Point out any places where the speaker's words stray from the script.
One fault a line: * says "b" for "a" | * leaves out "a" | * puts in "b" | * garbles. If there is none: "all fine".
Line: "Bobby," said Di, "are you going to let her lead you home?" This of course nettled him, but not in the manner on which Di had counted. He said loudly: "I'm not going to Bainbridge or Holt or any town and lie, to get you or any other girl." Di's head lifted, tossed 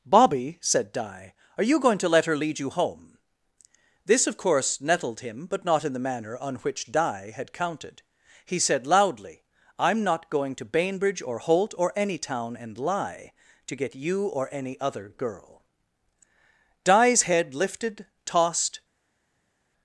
all fine